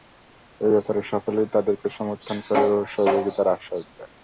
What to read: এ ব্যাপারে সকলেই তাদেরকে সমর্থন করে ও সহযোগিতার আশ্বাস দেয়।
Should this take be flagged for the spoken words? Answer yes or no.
no